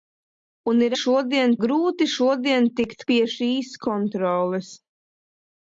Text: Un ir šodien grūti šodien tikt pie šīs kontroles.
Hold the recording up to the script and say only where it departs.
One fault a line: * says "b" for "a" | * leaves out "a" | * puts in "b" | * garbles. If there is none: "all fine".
all fine